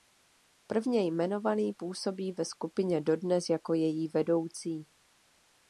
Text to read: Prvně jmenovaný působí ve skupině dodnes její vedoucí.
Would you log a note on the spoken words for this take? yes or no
yes